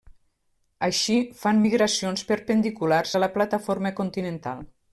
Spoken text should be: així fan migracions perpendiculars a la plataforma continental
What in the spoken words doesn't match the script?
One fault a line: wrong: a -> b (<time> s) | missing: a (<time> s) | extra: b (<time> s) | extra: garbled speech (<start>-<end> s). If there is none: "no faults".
no faults